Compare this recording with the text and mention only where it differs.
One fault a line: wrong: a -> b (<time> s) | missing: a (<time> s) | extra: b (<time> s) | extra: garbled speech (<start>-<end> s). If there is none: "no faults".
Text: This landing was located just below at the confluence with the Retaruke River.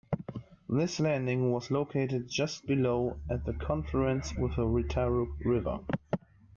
no faults